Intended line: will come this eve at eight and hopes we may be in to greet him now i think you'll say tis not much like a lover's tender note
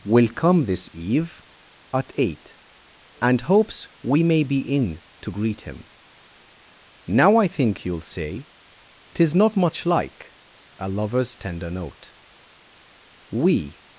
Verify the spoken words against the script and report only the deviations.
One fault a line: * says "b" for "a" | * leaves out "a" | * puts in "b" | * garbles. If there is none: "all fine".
* puts in "we"